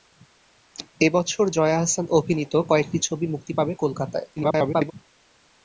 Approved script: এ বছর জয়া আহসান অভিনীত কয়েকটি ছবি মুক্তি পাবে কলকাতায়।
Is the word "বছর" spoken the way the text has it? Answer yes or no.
yes